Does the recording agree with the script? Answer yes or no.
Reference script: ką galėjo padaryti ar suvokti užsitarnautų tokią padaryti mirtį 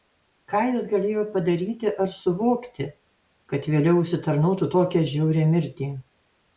no